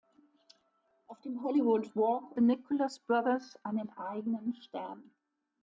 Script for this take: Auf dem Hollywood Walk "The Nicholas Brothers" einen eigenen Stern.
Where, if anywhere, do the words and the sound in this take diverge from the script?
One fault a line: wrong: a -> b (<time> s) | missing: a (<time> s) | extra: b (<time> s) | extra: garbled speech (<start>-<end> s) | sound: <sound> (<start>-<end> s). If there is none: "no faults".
no faults